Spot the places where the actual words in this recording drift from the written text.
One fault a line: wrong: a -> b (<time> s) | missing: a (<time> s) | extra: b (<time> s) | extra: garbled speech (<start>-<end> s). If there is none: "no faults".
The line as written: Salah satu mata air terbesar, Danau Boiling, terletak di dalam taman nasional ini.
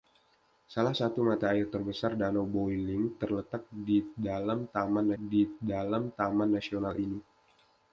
extra: di dalam taman (5.1 s)